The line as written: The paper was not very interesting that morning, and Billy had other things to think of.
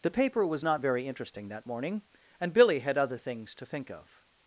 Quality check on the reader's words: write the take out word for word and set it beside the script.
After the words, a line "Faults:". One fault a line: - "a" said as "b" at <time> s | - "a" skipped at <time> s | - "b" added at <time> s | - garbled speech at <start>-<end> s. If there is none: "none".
The paper was not very interesting that morning, and Billy had other things to think of.
Faults:
none